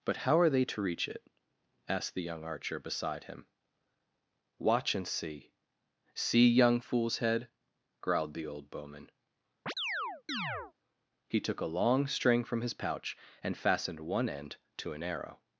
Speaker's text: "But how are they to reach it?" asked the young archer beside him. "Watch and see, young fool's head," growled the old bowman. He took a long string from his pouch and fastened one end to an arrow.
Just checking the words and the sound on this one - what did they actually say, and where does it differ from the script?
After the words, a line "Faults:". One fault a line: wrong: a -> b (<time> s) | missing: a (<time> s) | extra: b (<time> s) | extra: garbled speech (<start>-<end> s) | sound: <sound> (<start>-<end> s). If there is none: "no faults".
"But how are they to reach it?" asked the young archer beside him. "Watch and see see, young fool's head," growled the old bowman. He took a long string from his pouch and fastened one end to an arrow.
Faults:
extra: see (6.2 s)
sound: chirp (9.7-10.7 s)